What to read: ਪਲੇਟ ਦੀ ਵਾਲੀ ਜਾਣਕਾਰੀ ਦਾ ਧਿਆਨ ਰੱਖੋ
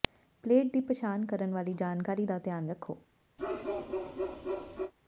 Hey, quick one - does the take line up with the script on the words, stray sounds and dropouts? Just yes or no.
no